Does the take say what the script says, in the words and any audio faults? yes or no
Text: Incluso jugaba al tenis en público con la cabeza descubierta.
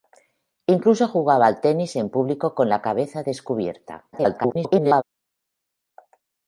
no